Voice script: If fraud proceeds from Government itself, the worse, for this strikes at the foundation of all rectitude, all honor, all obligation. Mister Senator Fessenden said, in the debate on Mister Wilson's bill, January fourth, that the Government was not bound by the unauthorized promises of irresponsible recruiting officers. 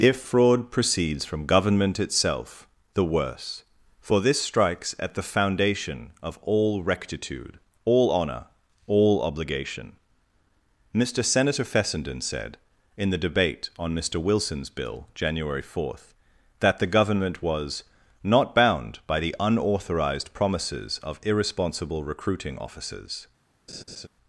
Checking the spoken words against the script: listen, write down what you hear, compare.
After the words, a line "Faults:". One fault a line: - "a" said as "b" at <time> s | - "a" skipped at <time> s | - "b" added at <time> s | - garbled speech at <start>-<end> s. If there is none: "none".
If fraud proceeds from Government itself, the worse, for this strikes at the foundation of all rectitude, all honor, all obligation. Mister Senator Fessenden said, in the debate on Mister Wilson's bill, January fourth, that the Government was not bound by the unauthorized promises of irresponsible recruiting officers.
Faults:
none